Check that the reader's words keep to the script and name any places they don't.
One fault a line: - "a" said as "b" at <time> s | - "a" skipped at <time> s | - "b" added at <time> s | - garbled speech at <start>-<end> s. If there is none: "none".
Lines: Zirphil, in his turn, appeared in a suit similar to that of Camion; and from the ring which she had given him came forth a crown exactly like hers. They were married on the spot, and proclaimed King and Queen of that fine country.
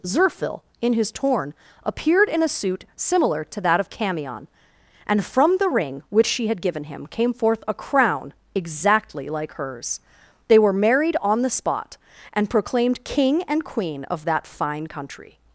- "turn" said as "torn" at 1.1 s